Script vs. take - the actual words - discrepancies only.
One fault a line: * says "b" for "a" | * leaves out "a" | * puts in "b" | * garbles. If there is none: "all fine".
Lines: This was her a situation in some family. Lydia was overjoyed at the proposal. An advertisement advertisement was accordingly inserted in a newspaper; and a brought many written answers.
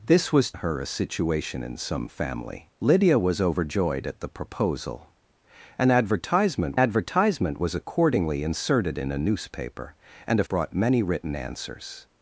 all fine